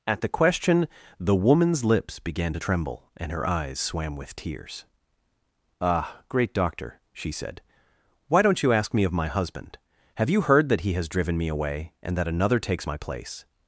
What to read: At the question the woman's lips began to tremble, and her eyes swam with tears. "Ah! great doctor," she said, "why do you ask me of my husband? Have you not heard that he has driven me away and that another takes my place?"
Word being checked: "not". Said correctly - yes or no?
no